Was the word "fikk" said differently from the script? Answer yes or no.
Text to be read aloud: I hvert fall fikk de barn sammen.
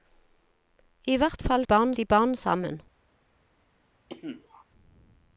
yes